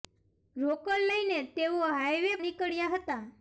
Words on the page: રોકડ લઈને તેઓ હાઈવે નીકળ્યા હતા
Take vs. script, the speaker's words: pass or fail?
pass